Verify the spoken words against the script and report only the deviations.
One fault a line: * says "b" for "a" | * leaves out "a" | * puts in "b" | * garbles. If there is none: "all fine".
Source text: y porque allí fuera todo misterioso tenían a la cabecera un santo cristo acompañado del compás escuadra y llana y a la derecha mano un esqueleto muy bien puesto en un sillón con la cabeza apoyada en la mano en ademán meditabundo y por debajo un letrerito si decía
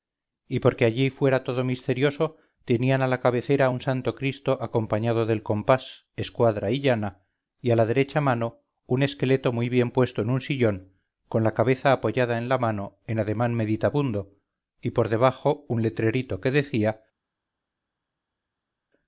* says "que" for "si"